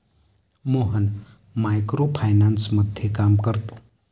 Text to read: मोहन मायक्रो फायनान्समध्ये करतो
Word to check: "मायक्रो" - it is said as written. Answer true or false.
true